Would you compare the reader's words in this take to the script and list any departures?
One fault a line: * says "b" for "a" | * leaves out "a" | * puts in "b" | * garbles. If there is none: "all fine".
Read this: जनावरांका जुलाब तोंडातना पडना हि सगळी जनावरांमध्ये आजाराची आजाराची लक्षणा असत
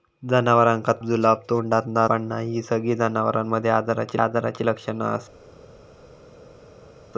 all fine